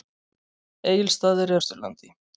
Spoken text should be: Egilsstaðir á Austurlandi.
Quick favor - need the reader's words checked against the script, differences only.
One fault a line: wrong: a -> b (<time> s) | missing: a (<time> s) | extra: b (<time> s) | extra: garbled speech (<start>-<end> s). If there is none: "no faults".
no faults